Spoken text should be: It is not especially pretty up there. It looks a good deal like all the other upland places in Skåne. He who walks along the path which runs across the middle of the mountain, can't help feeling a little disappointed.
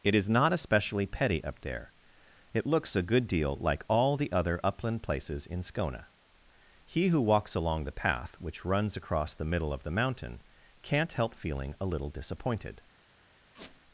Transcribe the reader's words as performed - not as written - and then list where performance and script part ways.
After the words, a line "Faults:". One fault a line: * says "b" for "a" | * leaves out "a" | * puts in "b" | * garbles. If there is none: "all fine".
It is not especially petty up there. It looks a good deal like all the other upland places in Skåne. He who walks along the path which runs across the middle of the mountain, can't help feeling a little disappointed.
Faults:
* says "petty" for "pretty"